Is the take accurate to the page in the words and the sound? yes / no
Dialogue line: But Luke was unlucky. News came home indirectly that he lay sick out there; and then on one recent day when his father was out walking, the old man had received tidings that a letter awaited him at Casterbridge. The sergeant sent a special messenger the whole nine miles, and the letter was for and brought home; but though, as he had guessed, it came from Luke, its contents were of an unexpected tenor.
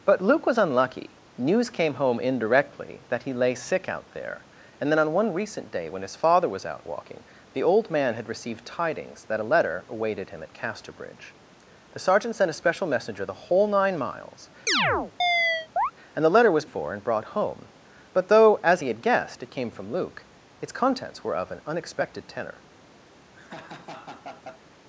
no